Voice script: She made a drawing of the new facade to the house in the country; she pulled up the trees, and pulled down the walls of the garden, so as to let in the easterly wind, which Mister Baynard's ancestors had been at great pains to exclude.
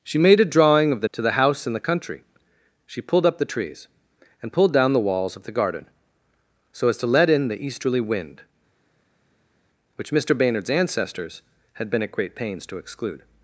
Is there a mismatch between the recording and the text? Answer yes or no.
yes